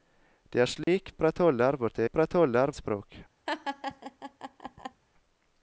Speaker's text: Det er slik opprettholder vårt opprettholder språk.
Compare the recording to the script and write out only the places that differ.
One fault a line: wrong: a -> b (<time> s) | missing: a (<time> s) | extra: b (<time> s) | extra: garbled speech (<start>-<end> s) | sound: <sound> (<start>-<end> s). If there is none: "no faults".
sound: dropout (0.8-0.9 s)
sound: laugh (3.5-5.0 s)